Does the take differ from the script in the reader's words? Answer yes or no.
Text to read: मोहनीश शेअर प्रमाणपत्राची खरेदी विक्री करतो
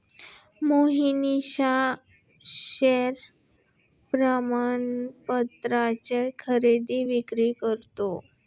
no